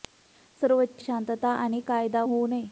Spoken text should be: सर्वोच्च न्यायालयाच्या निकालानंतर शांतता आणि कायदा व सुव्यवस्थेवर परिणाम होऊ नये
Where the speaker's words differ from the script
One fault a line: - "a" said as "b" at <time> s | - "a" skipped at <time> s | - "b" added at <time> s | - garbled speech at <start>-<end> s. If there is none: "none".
- "न्यायालयाच्या निकालानंतर" skipped at 1.0 s
- "व सुव्यवस्थेवर परिणाम" skipped at 2.2 s